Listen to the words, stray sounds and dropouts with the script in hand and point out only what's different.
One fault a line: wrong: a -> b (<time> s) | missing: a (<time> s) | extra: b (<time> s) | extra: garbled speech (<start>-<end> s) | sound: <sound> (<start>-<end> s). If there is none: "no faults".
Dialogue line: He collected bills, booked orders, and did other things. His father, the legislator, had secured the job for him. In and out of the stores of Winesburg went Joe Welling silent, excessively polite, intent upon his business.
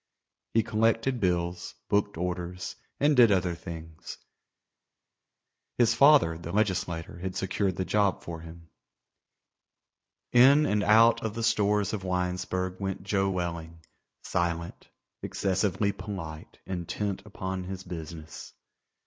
no faults